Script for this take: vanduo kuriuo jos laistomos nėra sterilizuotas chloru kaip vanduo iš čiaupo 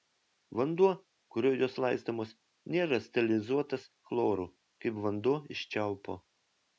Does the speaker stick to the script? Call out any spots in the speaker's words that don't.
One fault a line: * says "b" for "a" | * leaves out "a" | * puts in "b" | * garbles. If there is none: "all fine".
all fine